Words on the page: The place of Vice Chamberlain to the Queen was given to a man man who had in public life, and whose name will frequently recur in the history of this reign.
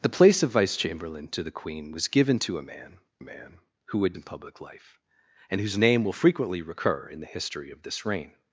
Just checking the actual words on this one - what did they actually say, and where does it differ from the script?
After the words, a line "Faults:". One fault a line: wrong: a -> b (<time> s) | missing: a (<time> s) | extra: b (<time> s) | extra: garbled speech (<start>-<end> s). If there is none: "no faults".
The place of Vice Chamberlain to the Queen was given to a man man who had in public life, and whose name will frequently recur in the history of this reign.
Faults:
no faults